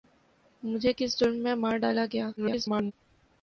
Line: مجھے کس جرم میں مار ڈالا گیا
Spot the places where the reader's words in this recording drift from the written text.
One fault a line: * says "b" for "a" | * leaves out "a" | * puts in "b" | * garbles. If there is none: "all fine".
* garbles